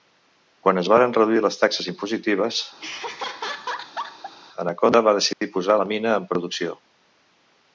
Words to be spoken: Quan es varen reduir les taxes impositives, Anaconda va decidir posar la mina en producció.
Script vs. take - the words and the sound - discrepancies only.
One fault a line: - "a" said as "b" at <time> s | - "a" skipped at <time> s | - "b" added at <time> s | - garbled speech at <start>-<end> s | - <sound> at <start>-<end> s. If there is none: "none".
- laugh at 2.8-4.3 s
- dropout at 5.3-5.4 s